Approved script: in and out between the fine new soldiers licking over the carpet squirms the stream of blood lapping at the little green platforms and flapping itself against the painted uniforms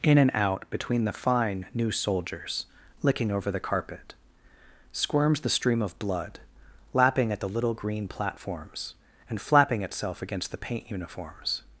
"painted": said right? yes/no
no